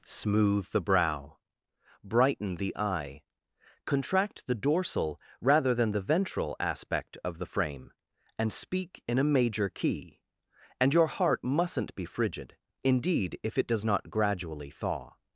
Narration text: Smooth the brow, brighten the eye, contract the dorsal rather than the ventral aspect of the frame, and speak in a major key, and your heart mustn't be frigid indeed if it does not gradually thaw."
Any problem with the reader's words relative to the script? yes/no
no